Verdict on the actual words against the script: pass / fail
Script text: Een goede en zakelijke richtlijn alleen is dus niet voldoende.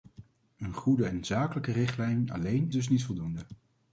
fail